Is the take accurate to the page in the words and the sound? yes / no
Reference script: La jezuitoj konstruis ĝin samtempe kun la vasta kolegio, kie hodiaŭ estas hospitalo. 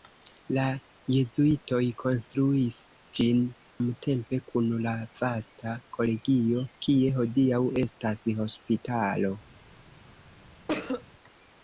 no